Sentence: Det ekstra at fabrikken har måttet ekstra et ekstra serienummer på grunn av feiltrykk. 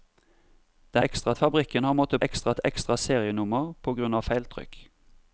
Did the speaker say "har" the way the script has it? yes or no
yes